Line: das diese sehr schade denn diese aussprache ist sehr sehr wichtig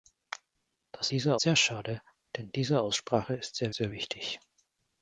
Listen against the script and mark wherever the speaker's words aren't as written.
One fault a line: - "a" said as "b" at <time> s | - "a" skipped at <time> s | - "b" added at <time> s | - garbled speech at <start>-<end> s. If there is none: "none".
none